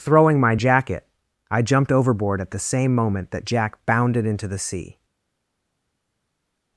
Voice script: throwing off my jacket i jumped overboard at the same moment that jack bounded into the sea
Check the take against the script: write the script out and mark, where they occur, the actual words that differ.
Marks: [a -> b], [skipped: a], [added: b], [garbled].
throwing [skipped: off] my jacket i jumped overboard at the same moment that jack bounded into the sea